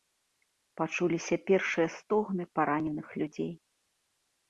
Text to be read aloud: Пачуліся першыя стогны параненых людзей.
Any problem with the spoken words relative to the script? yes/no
no